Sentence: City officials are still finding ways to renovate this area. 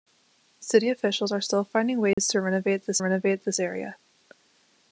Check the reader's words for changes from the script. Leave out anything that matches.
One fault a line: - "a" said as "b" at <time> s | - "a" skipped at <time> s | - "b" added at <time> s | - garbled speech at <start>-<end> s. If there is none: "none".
- "renovate this" added at 3.0 s